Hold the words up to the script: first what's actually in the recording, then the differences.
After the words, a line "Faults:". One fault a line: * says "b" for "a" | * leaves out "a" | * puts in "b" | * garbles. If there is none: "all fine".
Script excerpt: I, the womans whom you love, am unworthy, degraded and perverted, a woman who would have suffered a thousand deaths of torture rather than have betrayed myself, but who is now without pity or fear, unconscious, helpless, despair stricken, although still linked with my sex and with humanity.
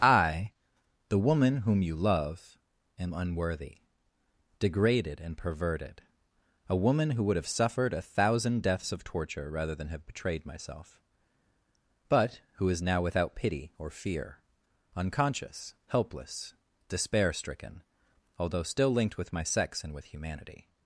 I, the woman whom you love, am unworthy, degraded and perverted, a woman who would have suffered a thousand deaths of torture rather than have betrayed myself, but who is now without pity or fear, unconscious, helpless, despair stricken, although still linked with my sex and with humanity.
Faults:
* says "woman" for "womans"